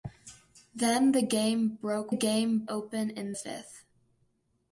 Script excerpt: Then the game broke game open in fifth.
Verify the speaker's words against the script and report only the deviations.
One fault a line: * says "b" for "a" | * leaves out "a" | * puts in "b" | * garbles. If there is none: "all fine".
all fine